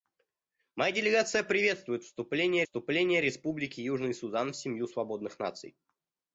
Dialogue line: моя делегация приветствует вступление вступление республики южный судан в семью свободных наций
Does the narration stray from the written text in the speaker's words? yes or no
no